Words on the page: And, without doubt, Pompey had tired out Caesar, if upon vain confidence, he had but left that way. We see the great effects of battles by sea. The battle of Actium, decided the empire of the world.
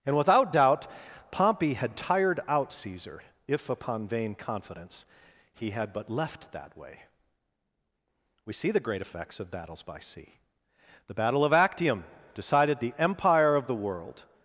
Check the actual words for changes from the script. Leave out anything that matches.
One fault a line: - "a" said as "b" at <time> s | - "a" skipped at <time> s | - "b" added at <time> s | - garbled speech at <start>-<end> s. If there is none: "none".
none